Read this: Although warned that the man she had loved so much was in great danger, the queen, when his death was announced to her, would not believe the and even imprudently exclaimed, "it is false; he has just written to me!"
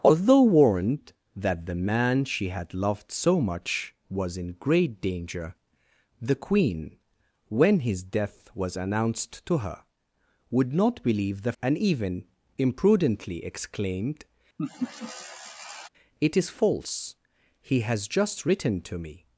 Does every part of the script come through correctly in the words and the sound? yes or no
no